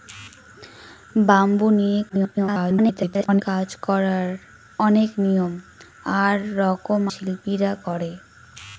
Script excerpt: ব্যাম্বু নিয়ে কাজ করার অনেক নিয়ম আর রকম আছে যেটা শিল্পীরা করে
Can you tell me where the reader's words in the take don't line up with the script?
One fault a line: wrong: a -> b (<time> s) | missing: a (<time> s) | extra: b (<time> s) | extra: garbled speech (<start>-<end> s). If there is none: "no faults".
extra: garbled speech (2.1-3.4 s)
missing: আছে যেটা (7.0 s)